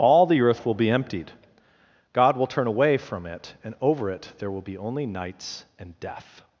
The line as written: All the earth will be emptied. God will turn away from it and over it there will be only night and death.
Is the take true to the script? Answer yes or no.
no